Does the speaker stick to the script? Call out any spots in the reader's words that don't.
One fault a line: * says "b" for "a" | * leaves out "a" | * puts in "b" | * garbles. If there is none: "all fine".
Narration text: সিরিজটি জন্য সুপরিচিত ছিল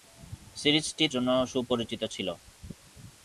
all fine